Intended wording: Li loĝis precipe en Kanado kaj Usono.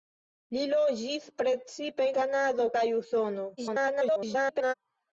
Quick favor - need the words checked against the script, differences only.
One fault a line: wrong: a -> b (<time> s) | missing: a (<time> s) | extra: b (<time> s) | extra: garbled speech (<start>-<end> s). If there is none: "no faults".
missing: en (2.1 s)
extra: garbled speech (3.6-4.7 s)